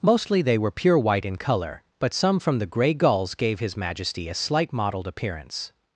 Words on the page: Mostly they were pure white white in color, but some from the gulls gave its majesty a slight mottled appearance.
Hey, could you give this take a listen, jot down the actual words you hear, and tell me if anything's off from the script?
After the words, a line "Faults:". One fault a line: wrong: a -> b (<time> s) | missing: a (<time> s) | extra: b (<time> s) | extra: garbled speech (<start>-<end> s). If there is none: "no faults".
Mostly they were pure white in color, but some from the gray gulls gave his majesty a slight mottled appearance.
Faults:
missing: white (1.2 s)
extra: gray (2.6 s)
wrong: its -> his (3.6 s)